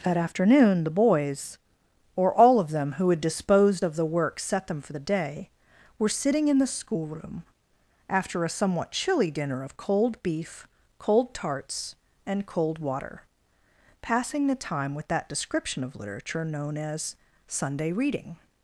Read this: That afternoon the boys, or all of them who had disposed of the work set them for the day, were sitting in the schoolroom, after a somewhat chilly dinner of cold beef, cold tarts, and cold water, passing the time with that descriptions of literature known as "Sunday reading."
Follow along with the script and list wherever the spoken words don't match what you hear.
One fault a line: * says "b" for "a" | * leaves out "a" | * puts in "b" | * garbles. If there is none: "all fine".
* says "description" for "descriptions"